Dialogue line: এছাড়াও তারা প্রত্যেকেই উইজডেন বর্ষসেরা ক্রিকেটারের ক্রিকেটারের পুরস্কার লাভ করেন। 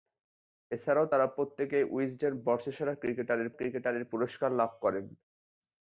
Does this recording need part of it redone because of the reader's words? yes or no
no